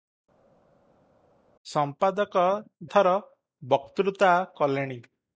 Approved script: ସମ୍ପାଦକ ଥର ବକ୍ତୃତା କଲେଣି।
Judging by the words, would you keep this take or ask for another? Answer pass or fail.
pass